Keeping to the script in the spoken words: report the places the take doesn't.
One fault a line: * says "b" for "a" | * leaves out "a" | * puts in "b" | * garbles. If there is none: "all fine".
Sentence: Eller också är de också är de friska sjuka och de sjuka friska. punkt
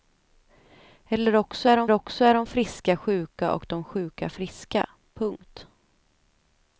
all fine